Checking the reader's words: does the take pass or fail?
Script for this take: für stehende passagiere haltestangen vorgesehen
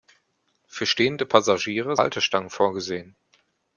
pass